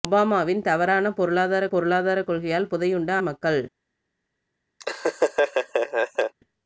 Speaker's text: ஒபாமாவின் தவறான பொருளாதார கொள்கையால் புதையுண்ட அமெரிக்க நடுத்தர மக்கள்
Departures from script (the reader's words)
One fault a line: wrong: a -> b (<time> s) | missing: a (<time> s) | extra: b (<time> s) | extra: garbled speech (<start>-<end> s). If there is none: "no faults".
extra: பொருளாதார (1.7 s)
missing: அமெரிக்க நடுத்தர (3.1 s)